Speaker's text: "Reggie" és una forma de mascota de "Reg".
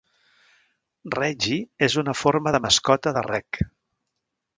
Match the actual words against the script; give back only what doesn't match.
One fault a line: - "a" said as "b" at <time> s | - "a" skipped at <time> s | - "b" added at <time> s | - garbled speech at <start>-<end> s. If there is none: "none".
none